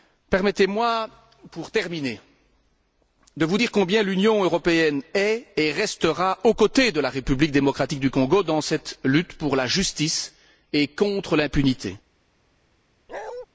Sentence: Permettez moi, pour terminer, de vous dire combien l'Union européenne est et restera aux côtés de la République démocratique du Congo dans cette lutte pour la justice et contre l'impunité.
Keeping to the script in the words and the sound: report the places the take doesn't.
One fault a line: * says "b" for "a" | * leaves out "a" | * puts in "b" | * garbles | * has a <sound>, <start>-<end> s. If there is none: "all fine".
* has a bark, 13.1-13.5 s